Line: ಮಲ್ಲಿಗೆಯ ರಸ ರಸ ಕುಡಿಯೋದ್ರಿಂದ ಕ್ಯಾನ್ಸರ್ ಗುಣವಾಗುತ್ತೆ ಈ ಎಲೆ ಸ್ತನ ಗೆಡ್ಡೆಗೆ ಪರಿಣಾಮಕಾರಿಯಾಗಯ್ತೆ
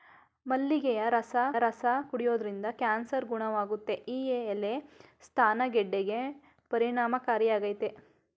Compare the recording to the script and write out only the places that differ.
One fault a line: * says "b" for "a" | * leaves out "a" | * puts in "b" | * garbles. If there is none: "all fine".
all fine